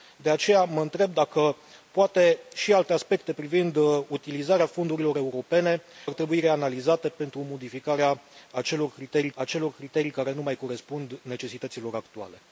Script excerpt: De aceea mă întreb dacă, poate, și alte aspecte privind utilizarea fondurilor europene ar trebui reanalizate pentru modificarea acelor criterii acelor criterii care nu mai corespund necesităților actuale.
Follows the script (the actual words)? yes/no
yes